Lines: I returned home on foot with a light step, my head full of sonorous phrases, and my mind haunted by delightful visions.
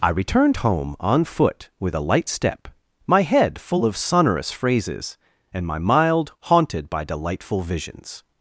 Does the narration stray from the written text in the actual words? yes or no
yes